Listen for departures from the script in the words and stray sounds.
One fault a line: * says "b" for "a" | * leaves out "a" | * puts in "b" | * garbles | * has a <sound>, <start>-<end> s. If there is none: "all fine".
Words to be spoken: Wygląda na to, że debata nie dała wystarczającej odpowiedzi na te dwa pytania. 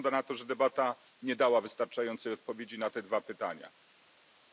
all fine